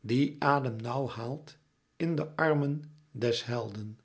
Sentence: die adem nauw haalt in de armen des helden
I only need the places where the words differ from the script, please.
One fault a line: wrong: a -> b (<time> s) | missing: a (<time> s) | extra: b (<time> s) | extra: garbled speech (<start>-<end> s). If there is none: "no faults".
no faults